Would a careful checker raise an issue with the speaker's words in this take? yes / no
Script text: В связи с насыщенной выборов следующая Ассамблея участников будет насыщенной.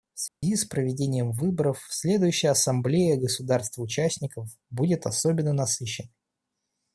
yes